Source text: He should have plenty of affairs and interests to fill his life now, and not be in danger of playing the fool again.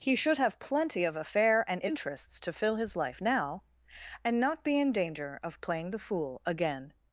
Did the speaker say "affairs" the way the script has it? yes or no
no